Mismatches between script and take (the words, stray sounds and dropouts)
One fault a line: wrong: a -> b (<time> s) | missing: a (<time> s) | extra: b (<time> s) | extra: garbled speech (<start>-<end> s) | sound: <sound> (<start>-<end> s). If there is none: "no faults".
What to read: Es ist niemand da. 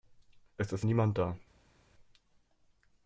no faults